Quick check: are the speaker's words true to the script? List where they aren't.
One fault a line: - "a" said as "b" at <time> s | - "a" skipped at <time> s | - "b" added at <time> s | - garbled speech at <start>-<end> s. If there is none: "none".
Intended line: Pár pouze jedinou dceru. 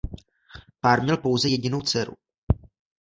- "měl" added at 1.0 s